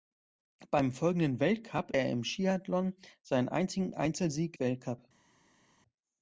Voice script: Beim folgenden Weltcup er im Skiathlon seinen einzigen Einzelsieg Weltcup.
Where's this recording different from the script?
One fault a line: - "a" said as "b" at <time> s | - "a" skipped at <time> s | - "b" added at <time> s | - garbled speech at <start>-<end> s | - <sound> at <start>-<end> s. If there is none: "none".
none